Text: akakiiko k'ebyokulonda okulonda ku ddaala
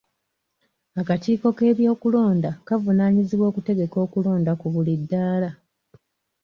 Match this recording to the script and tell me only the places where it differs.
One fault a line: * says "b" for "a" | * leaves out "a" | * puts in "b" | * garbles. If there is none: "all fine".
* puts in "kavunaanyizibwa okutegeka"
* puts in "buli"